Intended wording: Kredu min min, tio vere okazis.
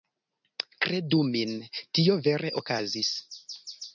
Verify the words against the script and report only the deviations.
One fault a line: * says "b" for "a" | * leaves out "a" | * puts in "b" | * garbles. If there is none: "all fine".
* leaves out "min"